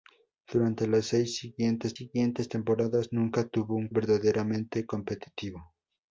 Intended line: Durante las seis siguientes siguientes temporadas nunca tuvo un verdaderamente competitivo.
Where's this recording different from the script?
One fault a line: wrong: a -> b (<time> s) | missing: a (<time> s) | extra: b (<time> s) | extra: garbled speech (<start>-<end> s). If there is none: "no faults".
no faults